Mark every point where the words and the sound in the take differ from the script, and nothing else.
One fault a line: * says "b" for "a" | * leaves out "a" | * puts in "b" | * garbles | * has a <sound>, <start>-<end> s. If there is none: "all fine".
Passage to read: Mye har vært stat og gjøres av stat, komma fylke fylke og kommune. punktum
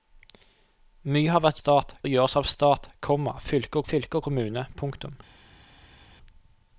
all fine